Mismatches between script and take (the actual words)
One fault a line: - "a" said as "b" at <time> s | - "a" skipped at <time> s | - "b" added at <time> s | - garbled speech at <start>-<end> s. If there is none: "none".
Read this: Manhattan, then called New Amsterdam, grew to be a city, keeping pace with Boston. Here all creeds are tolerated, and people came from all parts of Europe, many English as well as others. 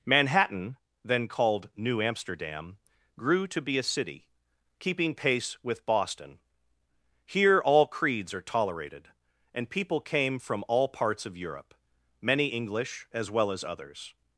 none